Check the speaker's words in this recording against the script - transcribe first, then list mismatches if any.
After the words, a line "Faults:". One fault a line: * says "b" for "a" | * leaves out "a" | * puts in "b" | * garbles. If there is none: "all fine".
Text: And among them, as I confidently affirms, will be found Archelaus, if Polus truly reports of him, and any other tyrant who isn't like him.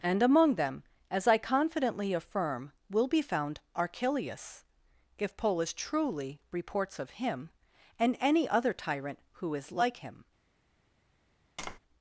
And among them, as I confidently affirm, will be found Archelaus, if Polus truly reports of him, and any other tyrant who is like him.
Faults:
* says "affirm" for "affirms"
* says "is" for "isn't"